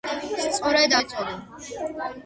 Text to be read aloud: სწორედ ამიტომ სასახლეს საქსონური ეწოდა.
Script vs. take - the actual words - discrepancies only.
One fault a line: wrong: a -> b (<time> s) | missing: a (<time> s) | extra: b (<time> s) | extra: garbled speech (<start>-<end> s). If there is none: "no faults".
missing: ამიტომ სასახლეს საქსონური (0.9 s)